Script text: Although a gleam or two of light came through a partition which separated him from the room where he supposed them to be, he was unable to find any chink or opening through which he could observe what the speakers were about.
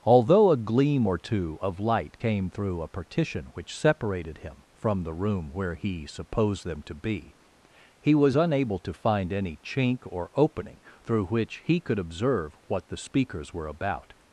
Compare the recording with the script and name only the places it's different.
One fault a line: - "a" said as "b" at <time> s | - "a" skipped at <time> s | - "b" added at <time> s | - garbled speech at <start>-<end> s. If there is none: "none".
none